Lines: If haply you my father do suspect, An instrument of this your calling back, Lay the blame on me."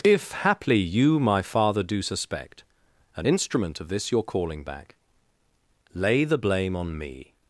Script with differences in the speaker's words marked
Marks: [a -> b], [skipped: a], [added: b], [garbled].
If haply you my father do suspect, An instrument of this your calling back, Lay the blame on me."